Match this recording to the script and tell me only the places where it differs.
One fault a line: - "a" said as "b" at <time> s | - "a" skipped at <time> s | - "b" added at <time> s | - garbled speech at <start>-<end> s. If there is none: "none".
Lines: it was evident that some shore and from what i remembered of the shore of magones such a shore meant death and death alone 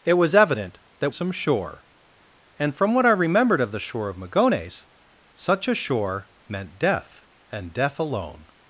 none